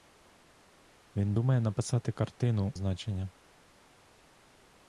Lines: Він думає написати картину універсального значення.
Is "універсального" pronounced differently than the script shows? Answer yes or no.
yes